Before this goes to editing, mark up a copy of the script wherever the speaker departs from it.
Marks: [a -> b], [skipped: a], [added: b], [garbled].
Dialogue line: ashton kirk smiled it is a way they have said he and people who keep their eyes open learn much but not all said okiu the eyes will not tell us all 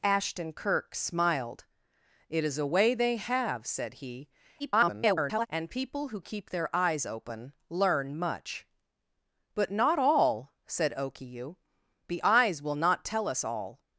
ashton kirk smiled it is a way they have said he [garbled] and people who keep their eyes open learn much but not all said okiu the eyes will not tell us all